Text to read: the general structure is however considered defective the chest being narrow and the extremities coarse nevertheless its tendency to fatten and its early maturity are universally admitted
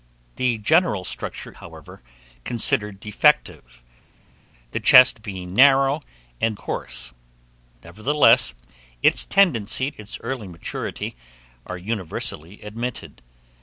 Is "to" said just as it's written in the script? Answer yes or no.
no